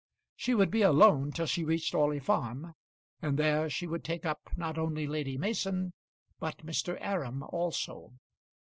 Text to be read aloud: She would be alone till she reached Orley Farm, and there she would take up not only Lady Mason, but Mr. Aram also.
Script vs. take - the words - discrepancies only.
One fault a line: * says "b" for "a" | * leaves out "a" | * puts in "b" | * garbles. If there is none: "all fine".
all fine